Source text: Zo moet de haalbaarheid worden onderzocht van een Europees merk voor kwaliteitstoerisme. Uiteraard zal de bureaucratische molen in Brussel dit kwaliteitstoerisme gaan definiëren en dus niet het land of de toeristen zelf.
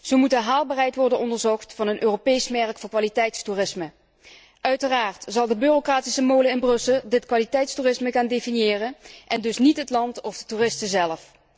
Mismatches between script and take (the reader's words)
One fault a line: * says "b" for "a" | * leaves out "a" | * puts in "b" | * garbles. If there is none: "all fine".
all fine